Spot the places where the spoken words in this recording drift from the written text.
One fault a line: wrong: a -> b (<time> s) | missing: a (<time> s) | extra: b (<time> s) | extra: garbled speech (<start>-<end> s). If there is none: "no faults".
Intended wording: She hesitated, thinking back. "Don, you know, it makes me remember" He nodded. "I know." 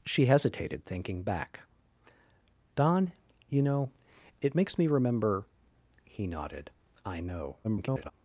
extra: garbled speech (7.6-8.1 s)